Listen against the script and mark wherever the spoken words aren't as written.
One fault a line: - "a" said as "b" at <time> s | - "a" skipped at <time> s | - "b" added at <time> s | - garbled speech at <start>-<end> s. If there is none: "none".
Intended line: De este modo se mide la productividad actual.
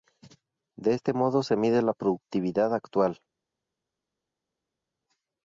none